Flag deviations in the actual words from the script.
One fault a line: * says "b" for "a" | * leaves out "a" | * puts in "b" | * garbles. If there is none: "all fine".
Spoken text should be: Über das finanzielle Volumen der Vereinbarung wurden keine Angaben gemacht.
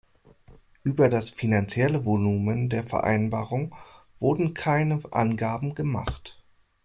all fine